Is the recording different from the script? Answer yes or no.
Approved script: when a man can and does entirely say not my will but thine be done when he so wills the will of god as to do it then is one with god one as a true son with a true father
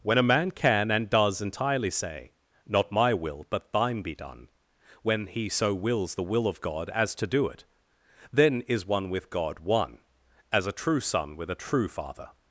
no